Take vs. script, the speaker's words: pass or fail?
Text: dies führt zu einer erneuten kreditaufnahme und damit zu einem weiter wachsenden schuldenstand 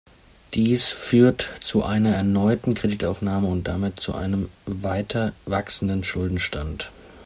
pass